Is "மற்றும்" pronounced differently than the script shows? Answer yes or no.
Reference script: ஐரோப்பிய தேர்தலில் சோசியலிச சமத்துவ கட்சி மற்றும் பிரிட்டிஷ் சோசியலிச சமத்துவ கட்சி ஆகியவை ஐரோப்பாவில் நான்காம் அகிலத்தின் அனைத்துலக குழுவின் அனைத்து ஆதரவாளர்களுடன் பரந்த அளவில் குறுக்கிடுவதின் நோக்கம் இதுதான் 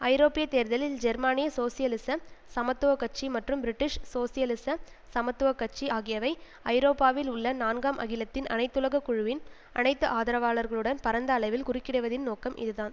no